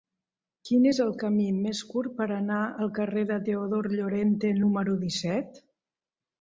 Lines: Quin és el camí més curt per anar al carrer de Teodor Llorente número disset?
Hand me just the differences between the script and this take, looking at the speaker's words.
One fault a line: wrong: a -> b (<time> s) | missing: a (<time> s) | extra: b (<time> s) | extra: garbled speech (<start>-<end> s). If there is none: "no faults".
no faults